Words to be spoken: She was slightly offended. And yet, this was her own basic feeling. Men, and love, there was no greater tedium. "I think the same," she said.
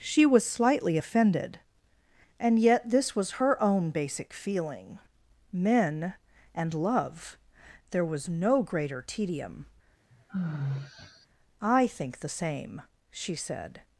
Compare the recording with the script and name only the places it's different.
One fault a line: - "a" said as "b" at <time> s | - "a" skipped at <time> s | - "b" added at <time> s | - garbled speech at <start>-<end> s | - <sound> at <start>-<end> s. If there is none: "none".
- sigh at 10.1-11.3 s